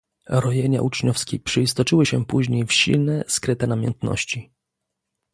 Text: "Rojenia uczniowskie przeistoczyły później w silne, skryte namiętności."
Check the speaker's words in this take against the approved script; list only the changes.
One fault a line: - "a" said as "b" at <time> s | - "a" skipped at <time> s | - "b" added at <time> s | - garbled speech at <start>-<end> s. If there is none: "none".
- "się" added at 2.0 s